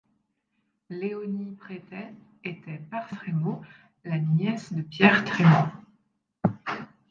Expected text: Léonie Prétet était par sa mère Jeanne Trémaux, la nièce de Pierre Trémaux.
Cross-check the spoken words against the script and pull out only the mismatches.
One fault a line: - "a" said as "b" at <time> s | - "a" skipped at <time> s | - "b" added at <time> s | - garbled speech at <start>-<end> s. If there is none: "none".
- "sa mère Jeanne" skipped at 3.1 s